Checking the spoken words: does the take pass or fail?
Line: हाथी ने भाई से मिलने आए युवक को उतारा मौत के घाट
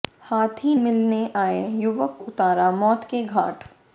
fail